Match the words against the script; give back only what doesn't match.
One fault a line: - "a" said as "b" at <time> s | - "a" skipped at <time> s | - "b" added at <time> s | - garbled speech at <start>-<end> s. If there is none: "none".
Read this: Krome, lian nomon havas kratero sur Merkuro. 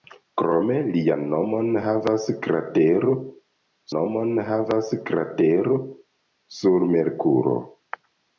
- "nomon havas kratero" added at 4.0 s